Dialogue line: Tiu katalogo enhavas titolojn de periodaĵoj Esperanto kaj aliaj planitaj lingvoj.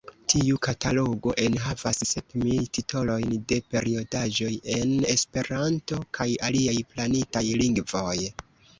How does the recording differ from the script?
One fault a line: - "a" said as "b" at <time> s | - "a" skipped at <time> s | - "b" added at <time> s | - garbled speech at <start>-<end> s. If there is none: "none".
- "sep mil" added at 2.1 s
- "en" added at 4.8 s